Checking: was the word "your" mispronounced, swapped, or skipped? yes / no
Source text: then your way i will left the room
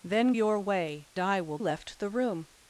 no